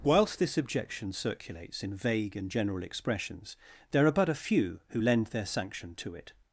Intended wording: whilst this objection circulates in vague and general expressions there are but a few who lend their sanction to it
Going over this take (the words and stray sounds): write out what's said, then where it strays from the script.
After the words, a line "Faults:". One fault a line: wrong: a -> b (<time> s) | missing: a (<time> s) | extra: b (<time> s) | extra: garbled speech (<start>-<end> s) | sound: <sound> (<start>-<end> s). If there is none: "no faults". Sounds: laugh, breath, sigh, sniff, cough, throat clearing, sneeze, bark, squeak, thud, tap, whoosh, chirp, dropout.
whilst this objection circulates in vague and general expressions there are but a few who lend their sanction to it
Faults:
no faults